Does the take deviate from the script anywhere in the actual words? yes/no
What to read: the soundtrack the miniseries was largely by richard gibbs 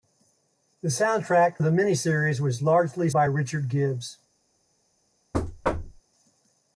no